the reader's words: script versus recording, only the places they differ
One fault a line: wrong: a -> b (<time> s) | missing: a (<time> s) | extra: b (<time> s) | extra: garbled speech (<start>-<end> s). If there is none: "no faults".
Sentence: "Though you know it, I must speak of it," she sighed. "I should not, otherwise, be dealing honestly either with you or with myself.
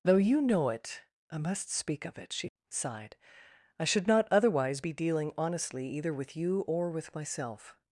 no faults